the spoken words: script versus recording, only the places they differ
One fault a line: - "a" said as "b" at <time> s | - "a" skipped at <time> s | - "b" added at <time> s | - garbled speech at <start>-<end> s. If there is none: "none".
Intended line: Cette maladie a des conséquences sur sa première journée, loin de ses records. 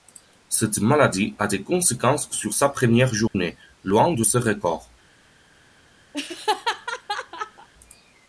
none